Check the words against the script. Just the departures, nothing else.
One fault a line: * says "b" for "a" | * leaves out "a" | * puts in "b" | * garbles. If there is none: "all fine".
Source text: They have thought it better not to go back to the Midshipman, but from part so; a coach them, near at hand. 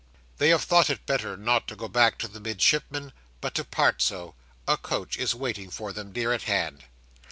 * says "to" for "from"
* puts in "is waiting for"